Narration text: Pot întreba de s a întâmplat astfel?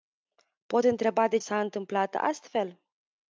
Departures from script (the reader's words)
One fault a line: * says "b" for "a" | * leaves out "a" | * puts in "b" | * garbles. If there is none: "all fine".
all fine